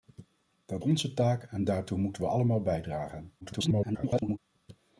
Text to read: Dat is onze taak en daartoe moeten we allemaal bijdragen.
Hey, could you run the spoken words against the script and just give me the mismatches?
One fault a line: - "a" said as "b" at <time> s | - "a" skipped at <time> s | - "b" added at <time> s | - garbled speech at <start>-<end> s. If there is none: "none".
- "is" skipped at 0.8 s
- garbled speech at 3.4-4.4 s